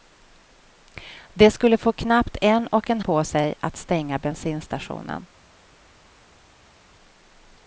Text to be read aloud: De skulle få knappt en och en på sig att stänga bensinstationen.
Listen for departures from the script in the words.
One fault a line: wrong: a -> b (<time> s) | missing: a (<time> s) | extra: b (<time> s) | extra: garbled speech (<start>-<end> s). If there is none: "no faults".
no faults